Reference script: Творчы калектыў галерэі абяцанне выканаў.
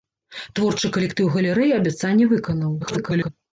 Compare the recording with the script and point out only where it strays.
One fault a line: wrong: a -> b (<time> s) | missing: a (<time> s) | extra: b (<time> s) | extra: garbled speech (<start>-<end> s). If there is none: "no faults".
extra: garbled speech (2.8-3.3 s)